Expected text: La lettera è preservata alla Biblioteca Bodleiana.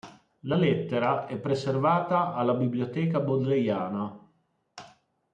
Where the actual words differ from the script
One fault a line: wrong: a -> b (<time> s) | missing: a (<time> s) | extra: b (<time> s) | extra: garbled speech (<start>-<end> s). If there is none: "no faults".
no faults